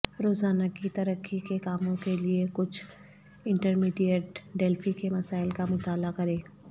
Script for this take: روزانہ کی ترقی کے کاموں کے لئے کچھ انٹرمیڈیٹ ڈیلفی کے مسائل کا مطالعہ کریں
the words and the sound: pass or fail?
pass